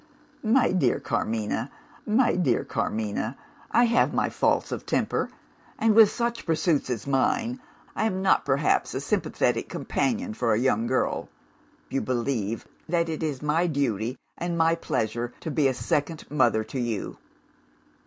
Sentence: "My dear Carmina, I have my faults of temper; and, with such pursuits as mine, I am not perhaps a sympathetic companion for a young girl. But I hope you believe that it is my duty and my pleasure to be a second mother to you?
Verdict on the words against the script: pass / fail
fail